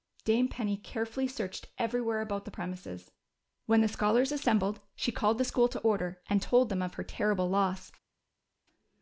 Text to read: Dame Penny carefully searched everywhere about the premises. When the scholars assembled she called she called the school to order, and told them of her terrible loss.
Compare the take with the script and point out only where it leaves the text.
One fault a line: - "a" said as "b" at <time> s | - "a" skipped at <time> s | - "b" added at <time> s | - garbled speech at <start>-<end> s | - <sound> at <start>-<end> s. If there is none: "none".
- "she called" skipped at 5.4 s